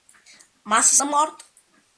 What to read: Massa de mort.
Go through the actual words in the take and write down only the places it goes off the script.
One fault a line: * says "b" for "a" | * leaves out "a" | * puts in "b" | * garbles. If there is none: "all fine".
all fine